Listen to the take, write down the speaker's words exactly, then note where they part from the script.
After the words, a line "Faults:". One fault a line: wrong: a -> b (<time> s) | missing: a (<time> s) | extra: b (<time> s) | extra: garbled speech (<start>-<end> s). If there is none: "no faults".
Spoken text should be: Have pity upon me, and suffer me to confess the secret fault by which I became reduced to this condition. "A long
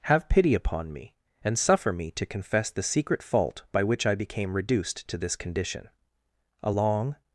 Have pity upon me, and suffer me to confess the secret fault by which I became reduced to this condition. "A long
Faults:
no faults